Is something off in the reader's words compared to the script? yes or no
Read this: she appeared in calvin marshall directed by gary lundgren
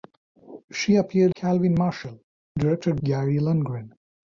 yes